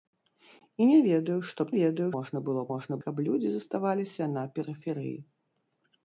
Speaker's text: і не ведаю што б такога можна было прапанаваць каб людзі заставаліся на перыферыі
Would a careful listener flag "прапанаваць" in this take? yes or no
yes